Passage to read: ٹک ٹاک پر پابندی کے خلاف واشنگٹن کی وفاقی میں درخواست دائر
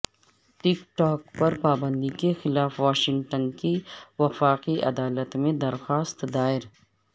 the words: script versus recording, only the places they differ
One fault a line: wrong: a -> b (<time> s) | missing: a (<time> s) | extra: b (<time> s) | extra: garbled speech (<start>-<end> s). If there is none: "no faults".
extra: عدالت (4.8 s)